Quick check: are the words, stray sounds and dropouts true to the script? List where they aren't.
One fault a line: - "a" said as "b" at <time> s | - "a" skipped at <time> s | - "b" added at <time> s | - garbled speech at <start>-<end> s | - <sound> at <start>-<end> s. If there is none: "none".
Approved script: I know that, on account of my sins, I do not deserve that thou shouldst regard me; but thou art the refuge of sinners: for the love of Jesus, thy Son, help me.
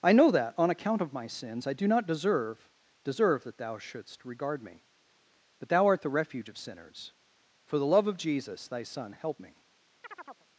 - "deserve" added at 3.0 s
- chirp at 10.0-10.5 s